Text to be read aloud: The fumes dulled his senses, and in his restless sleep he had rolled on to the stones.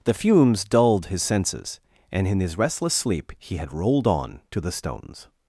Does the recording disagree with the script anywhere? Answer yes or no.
no